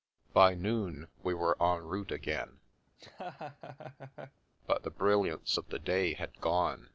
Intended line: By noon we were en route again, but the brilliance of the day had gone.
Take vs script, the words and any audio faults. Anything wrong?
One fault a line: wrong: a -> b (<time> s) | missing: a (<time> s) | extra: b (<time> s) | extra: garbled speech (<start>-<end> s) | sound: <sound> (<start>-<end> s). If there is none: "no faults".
sound: laugh (2.9-4.4 s)